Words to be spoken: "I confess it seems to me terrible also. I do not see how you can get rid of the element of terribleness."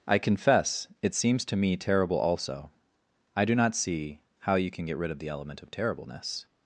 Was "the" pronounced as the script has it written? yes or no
yes